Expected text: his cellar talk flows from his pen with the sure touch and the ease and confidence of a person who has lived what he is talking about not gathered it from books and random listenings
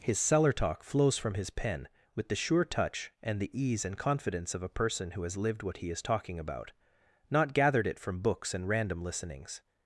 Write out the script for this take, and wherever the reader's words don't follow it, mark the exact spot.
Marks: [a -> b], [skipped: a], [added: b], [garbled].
his cellar talk flows from his pen with the sure touch and the ease and confidence of a person who has lived what he is talking about not gathered it from books and random listenings